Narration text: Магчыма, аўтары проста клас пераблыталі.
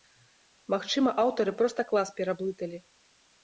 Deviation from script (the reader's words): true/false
false